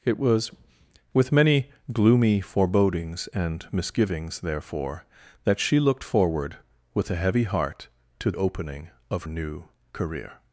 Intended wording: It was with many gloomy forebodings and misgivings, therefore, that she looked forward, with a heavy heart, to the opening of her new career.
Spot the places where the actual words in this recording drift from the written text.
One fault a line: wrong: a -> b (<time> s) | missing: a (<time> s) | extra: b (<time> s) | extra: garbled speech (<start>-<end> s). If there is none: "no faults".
missing: the (8.3 s)
missing: her (9.2 s)